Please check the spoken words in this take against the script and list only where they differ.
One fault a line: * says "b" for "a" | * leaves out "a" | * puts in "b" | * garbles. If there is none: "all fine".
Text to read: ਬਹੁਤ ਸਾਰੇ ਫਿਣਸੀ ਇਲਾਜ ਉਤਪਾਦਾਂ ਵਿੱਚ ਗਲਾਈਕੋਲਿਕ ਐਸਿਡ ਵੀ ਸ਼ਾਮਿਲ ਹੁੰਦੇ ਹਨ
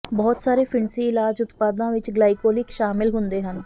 * leaves out "ਐਸਿਡ ਵੀ"